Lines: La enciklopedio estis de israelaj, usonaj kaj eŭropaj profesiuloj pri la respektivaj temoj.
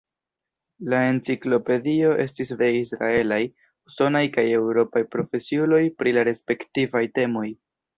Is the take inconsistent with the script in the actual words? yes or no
no